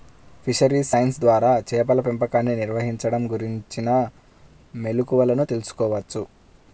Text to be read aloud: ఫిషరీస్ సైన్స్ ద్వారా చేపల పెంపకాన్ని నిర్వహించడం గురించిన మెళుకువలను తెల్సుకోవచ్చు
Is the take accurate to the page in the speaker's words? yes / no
yes